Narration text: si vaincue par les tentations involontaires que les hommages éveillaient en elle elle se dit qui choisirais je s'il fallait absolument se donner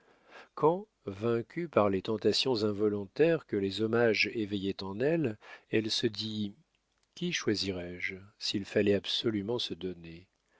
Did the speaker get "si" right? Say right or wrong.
wrong